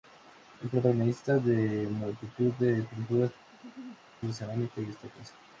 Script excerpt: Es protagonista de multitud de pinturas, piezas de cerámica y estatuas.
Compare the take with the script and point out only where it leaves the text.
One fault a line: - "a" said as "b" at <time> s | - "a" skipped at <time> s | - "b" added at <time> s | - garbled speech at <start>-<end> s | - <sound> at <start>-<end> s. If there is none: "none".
- "piezas" skipped at 3.3 s
- laugh at 3.5-4.0 s